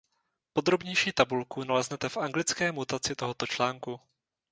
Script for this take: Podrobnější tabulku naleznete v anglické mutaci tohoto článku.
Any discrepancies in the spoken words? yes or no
no